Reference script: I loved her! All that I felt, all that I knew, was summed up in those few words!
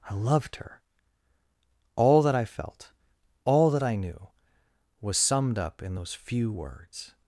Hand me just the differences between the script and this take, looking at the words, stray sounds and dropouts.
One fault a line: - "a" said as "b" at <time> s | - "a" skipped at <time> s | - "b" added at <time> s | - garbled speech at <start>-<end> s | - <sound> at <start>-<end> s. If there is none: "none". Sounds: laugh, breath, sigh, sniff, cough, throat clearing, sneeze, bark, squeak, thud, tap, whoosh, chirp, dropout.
none